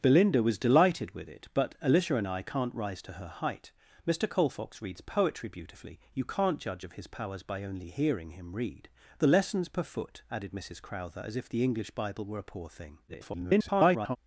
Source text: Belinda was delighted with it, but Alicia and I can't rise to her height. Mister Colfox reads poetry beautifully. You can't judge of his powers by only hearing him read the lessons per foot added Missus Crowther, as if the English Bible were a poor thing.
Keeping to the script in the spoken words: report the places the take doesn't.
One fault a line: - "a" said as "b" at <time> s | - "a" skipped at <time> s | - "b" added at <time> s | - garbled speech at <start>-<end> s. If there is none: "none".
- garbled speech at 13.1-14.2 s